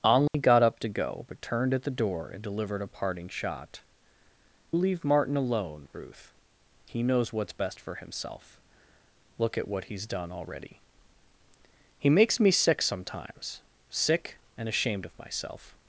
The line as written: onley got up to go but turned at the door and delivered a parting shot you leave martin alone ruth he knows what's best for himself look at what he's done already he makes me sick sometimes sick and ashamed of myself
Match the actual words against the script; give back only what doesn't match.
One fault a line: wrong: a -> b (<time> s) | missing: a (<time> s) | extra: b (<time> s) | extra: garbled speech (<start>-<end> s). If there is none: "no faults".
missing: you (3.8 s)